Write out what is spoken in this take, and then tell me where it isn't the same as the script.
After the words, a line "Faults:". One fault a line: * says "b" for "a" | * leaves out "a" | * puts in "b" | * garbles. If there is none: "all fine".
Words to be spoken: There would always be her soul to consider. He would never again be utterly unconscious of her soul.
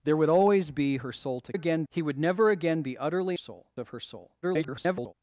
There would always be her soul to again. He would never again be utterly soul of her soul. [garbled]
Faults:
* says "again" for "consider"
* says "soul" for "unconscious"
* garbles